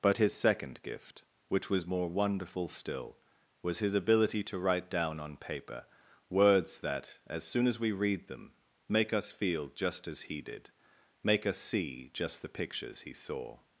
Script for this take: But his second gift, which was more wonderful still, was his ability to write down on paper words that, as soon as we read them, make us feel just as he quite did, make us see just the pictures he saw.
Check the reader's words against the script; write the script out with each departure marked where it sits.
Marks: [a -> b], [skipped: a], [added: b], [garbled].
But his second gift, which was more wonderful still, was his ability to write down on paper words that, as soon as we read them, make us feel just as he [skipped: quite] did, make us see just the pictures he saw.